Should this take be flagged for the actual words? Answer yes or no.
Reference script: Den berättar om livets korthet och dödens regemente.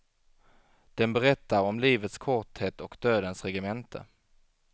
no